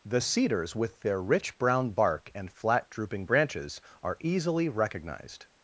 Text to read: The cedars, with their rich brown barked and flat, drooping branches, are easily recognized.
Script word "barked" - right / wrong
wrong